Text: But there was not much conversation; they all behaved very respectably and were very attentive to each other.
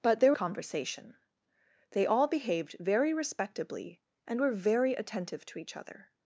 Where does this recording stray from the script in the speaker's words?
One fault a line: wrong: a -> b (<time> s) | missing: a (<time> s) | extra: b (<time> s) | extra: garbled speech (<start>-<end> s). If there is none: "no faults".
missing: was not much (0.3 s)